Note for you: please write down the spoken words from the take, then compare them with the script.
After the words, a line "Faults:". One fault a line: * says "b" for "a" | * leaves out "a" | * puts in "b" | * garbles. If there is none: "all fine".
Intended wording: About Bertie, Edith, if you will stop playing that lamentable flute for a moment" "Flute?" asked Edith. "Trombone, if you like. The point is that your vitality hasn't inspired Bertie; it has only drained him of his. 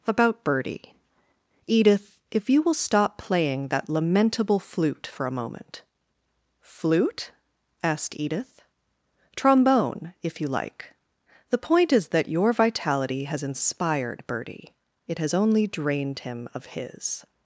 About Bertie, Edith, if you will stop playing that lamentable flute for a moment" "Flute?" asked Edith. "Trombone, if you like. The point is that your vitality has inspired Bertie; it has only drained him of his.
Faults:
* says "has" for "hasn't"